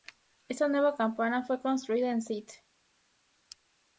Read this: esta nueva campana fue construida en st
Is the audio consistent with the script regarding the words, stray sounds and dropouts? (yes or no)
yes